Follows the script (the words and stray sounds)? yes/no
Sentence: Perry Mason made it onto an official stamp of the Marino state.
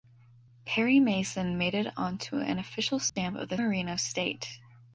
no